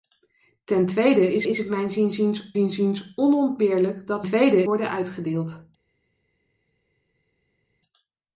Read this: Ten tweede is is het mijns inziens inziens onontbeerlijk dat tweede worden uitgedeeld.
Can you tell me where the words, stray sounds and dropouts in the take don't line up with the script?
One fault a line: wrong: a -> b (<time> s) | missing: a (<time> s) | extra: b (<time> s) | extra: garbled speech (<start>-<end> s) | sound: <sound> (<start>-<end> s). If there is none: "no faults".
no faults